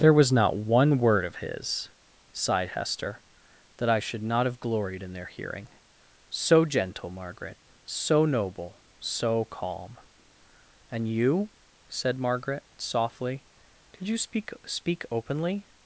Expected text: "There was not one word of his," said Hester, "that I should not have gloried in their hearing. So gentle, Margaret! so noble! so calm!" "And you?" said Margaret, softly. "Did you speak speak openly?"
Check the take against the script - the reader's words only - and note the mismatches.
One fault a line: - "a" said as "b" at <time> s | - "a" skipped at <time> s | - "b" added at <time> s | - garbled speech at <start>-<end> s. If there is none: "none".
- "said" said as "sighed" at 2.3 s